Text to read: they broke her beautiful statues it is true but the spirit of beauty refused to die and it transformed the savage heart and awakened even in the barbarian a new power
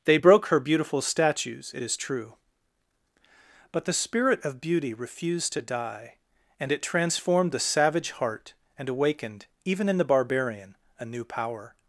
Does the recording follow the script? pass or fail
pass